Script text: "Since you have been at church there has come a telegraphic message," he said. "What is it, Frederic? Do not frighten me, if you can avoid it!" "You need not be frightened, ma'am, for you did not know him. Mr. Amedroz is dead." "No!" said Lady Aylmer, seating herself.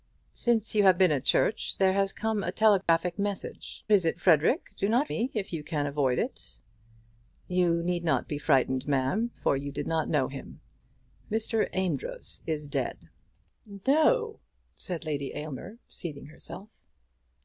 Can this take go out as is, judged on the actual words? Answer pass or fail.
fail